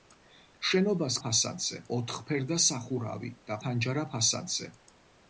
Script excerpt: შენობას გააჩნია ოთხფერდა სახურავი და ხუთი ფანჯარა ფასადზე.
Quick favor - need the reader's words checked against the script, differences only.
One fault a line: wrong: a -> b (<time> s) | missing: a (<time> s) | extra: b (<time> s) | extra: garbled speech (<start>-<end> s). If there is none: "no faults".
wrong: გააჩნია -> ფასადზე (1.3 s)
missing: ხუთი (3.6 s)